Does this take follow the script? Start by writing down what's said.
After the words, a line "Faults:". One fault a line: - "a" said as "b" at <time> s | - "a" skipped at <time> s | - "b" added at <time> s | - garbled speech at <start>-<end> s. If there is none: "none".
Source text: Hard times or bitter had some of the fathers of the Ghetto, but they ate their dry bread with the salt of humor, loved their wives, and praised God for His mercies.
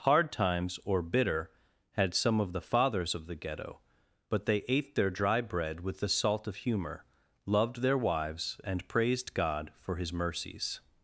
Hard times or bitter had some of the fathers of the Ghetto, but they ate their dry bread with the salt of humor, loved their wives, and praised God for His mercies.
Faults:
none